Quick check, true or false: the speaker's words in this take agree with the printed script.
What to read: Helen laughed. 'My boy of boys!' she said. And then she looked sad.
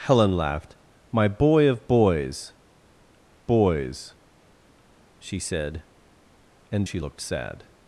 false